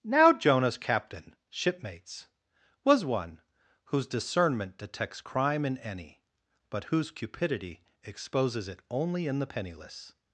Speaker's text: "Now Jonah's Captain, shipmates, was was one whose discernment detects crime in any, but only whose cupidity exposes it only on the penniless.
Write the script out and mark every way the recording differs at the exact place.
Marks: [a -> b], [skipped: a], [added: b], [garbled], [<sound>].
"Now Jonah's Captain, shipmates, was [skipped: was] one whose discernment detects crime in any, but [skipped: only] whose cupidity exposes it only [on -> in] the penniless.